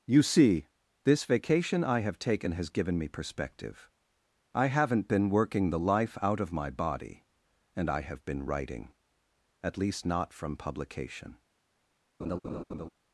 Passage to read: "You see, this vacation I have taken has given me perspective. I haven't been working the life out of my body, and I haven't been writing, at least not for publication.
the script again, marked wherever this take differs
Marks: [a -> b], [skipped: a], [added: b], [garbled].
"You see, this vacation I have taken has given me perspective. I haven't been working the life out of my body, and I [haven't -> have] been writing, at least not [for -> from] publication.